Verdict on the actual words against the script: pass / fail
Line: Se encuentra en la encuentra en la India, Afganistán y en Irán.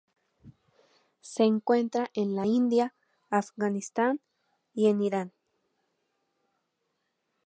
fail